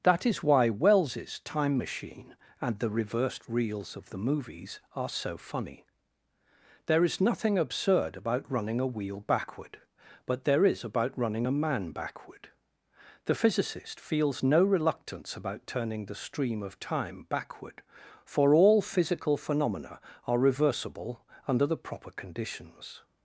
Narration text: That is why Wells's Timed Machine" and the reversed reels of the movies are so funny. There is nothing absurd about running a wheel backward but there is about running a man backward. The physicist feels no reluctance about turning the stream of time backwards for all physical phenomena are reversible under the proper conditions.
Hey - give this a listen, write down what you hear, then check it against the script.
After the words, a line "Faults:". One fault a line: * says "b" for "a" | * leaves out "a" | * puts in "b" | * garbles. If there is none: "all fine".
That is why Wells's Time Machine" and the reversed reels of the movies are so funny. There is nothing absurd about running a wheel backward but there is about running a man backward. The physicist feels no reluctance about turning the stream of time backward for all physical phenomena are reversible under the proper conditions.
Faults:
* says "Time" for "Timed"
* says "backward" for "backwards"